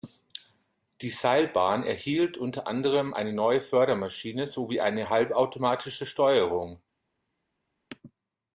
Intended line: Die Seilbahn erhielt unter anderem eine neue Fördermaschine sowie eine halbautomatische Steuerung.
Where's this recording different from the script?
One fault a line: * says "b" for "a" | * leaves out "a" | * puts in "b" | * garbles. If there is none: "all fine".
all fine